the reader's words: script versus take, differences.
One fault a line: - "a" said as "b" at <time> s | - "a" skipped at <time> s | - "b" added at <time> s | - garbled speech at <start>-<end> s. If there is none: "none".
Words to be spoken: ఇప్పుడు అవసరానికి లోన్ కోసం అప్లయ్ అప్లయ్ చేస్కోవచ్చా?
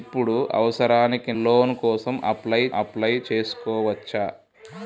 none